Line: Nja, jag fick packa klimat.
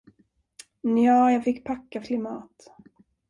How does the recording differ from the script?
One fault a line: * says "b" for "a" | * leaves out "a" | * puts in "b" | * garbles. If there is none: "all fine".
all fine